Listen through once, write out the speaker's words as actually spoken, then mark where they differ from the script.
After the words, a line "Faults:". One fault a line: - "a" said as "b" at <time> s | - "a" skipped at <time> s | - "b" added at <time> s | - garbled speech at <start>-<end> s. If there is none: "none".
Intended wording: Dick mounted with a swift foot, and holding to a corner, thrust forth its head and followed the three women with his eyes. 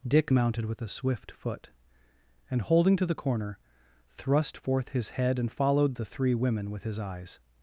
Dick mounted with a swift foot, and holding to the corner, thrust forth his head and followed the three women with his eyes.
Faults:
- "a" said as "the" at 3.1 s
- "its" said as "his" at 4.9 s